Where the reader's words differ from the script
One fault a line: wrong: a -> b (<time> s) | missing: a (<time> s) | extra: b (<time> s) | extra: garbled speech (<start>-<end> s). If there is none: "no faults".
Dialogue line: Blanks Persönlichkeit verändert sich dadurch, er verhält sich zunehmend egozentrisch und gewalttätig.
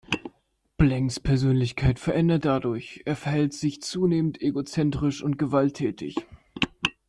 missing: sich (2.4 s)